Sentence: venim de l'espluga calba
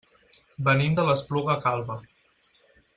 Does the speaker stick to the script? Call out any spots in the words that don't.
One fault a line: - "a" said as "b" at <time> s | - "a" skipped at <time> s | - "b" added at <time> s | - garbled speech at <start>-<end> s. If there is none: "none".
none